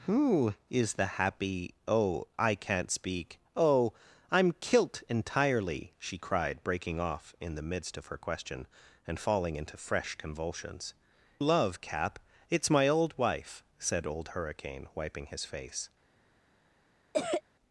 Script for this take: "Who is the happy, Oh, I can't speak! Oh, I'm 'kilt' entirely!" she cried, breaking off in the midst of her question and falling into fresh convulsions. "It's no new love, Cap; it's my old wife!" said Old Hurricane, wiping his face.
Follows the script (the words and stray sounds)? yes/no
no